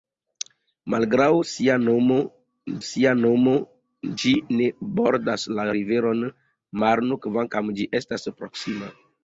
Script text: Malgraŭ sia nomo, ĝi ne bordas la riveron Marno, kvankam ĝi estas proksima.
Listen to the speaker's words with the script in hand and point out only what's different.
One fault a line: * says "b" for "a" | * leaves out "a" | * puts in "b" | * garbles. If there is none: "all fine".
* puts in "sia nomo"